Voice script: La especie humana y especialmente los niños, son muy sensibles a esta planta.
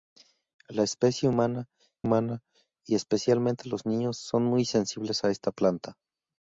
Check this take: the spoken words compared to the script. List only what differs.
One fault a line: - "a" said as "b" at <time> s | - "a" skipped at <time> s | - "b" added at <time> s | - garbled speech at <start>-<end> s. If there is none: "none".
- "humana" added at 2.0 s